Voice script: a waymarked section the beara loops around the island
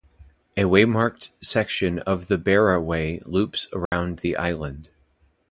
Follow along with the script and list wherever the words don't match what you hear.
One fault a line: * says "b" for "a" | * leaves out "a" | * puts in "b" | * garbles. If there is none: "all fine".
* puts in "of"
* puts in "way"